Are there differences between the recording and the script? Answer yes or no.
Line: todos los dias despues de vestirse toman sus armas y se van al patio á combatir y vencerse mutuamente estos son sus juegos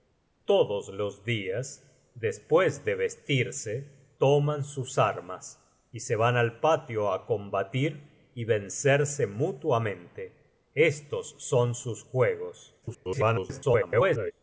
yes